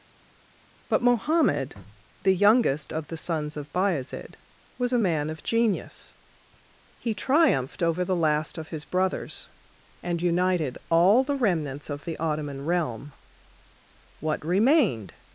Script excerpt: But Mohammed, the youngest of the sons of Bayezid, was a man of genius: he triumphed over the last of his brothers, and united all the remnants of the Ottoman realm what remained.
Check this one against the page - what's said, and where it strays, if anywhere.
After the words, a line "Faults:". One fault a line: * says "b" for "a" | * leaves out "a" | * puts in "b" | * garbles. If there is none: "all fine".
But Mohammed, the youngest of the sons of Bayezid, was a man of genius: he triumphed over the last of his brothers, and united all the remnants of the Ottoman realm what remained.
Faults:
all fine